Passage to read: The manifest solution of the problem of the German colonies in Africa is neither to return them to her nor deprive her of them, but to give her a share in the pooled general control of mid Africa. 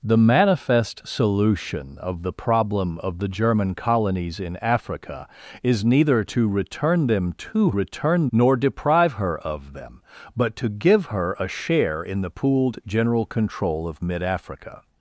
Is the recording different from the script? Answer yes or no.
yes